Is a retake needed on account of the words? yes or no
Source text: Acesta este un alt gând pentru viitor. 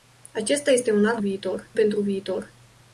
yes